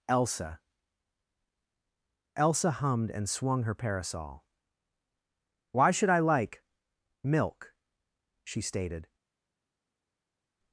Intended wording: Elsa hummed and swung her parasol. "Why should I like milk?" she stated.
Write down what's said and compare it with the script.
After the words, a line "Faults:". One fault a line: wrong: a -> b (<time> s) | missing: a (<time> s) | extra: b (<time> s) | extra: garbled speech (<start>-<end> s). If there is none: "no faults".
Elsa elsa hummed and swung her parasol. "Why should I like milk?" she stated.
Faults:
extra: elsa (2.4 s)